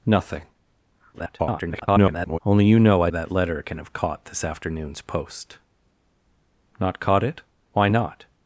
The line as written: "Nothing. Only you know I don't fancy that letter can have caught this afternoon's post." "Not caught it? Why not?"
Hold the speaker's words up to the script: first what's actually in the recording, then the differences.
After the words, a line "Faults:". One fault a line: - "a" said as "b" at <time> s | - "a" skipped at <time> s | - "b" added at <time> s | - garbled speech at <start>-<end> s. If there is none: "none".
"Nothing. [garbled] Only you know I that letter can have caught this afternoon's post." "Not caught it? Why not?"
Faults:
- garbled speech at 1.1-2.4 s
- "don't fancy" skipped at 3.1 s